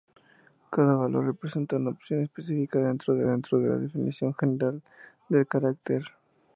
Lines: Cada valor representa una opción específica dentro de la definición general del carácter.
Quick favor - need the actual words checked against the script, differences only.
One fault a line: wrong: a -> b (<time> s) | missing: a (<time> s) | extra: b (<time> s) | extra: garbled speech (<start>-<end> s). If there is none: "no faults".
extra: dentro de (3.2 s)